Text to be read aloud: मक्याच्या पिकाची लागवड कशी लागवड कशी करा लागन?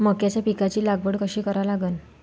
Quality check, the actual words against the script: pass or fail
fail